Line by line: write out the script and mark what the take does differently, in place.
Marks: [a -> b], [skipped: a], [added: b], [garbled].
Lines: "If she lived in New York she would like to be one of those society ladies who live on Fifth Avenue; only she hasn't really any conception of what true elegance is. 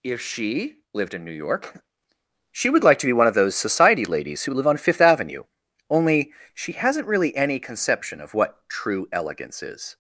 "If she lived in New York she would like to be one of those society ladies who live on Fifth Avenue; only she hasn't really any conception of what true elegance is.